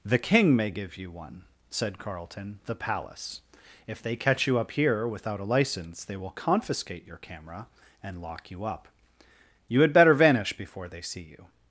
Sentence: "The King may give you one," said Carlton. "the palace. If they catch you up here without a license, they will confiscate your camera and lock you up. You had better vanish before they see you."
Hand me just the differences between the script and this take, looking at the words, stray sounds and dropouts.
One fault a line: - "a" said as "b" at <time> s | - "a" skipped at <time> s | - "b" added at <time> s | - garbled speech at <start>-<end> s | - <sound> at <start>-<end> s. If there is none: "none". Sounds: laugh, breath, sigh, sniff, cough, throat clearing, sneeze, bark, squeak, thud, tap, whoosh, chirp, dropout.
none